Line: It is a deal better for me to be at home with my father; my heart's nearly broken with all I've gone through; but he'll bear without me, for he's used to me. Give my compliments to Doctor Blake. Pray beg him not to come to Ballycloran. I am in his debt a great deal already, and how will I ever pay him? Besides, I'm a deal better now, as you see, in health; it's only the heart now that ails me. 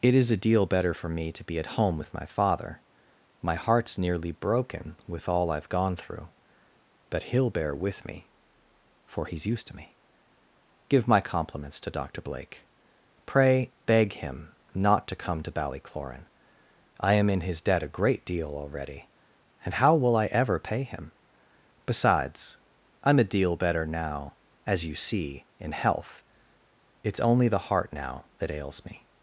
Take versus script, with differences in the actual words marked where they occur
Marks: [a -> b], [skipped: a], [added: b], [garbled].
It is a deal better for me to be at home with my father; my heart's nearly broken with all I've gone through; but he'll bear [without -> with] me, for he's used to me. Give my compliments to Doctor Blake. Pray beg him not to come to Ballycloran. I am in his debt a great deal already, and how will I ever pay him? Besides, I'm a deal better now, as you see, in health; it's only the heart now that ails me.